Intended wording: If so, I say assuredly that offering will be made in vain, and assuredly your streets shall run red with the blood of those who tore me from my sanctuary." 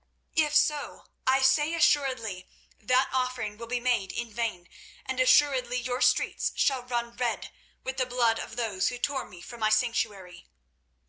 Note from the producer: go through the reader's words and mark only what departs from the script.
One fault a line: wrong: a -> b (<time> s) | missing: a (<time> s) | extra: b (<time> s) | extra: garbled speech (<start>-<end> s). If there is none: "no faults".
no faults